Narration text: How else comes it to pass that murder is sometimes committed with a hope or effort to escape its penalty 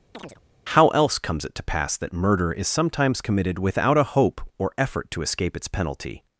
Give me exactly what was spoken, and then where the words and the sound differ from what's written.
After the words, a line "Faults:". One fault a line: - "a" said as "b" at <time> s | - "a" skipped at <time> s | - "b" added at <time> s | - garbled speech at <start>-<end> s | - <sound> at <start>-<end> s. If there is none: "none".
How else comes it to pass that murder is sometimes committed without a hope or effort to escape its penalty
Faults:
- chirp at 0.1-0.4 s
- "with" said as "without" at 3.6 s